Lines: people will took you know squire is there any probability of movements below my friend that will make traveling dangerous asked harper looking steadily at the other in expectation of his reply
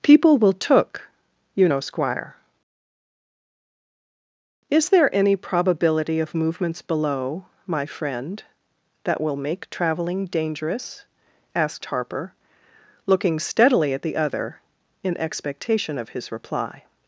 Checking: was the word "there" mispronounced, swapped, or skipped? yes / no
no